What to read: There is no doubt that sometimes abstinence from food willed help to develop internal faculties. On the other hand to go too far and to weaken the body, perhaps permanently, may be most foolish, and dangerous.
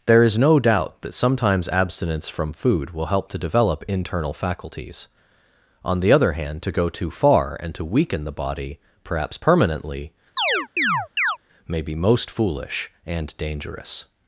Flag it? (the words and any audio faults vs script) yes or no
yes